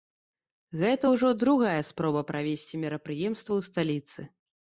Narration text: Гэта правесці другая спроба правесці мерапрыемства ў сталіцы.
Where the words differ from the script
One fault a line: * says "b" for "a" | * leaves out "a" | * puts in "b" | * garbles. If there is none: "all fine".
* says "ўжо" for "правесці"